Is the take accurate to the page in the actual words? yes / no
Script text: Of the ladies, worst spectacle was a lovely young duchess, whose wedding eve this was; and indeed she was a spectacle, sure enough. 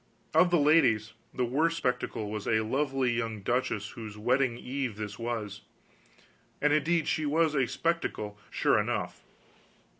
no